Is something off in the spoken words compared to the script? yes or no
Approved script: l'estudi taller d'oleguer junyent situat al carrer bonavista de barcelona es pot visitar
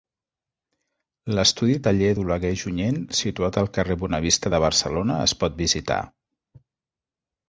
no